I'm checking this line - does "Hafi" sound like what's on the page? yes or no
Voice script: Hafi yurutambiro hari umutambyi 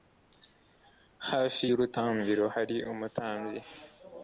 yes